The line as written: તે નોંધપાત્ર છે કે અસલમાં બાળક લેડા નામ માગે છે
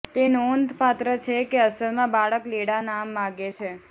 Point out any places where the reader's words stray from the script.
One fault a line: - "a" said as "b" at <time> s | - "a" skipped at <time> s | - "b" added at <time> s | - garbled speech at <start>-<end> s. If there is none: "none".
none